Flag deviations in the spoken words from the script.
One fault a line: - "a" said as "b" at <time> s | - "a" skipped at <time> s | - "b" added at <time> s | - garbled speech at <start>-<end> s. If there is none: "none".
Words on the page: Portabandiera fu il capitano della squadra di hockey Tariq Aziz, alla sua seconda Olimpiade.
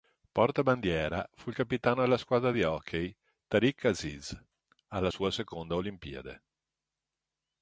none